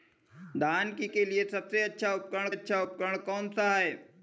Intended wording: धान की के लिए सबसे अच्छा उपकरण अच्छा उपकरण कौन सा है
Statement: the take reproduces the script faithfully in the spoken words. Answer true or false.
true